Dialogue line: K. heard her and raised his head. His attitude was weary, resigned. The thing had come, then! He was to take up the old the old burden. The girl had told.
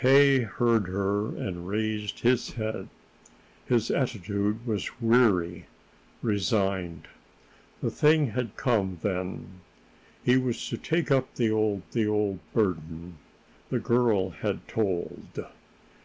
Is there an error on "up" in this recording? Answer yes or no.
no